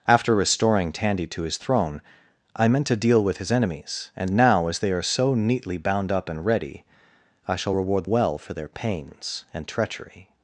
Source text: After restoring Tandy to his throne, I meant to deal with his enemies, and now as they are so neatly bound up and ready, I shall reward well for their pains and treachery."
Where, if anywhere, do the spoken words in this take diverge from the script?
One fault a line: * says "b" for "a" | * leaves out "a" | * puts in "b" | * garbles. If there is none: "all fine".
all fine